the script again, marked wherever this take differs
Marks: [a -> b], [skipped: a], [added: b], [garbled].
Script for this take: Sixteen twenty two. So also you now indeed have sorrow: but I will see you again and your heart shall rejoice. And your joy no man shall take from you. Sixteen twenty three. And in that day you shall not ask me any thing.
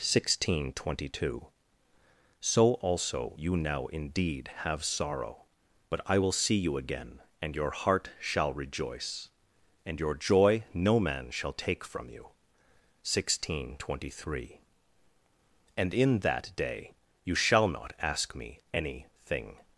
Sixteen twenty two. So also you now indeed have sorrow: but I will see you again and your heart shall rejoice. And your joy no man shall take from you. Sixteen twenty three. And in that day you shall not ask me any thing.